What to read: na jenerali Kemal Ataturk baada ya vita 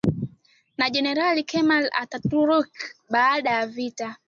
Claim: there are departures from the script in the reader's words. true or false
false